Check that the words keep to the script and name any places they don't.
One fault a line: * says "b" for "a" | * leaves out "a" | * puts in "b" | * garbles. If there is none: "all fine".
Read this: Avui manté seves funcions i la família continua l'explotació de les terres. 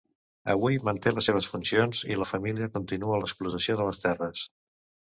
* puts in "les"